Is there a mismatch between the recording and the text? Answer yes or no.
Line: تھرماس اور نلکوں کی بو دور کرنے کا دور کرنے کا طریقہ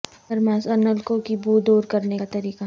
yes